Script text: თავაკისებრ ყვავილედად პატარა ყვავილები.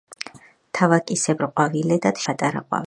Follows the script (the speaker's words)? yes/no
yes